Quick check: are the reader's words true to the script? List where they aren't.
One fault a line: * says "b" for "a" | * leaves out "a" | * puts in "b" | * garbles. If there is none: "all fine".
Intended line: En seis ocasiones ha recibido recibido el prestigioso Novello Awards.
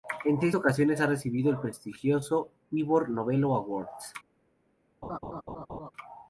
* leaves out "recibido"
* puts in "Ivor"